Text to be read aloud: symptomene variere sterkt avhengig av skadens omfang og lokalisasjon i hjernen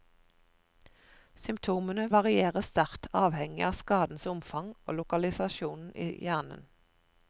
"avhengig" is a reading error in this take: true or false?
false